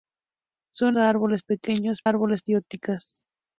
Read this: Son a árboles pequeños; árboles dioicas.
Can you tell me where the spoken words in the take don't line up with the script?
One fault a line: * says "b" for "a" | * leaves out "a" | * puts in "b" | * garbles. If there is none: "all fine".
all fine